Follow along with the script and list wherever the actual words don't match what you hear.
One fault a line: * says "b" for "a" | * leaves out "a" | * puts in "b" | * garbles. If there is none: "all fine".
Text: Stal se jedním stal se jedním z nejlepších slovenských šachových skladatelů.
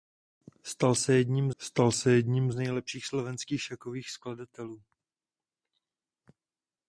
all fine